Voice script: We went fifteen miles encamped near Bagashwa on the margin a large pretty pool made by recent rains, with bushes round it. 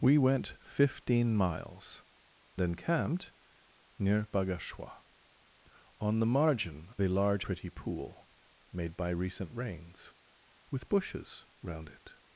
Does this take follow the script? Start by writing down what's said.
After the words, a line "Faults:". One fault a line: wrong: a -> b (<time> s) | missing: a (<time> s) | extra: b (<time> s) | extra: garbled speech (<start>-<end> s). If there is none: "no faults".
We went fifteen miles encamped near Bagashwa on the margin a large pretty pool made by recent rains, with bushes round it.
Faults:
no faults